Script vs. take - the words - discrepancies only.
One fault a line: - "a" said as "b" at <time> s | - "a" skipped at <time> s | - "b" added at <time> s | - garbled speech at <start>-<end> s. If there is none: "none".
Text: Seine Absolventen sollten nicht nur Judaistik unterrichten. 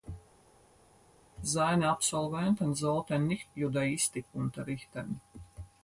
- "nur" skipped at 3.5 s